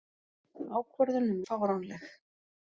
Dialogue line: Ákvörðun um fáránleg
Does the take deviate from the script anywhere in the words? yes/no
no